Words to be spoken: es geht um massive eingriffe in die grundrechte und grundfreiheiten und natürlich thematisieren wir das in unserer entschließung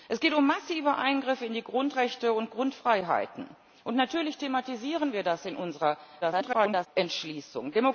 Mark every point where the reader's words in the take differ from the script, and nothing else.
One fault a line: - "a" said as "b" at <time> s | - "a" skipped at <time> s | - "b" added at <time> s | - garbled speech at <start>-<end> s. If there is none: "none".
- garbled speech at 6.2-6.9 s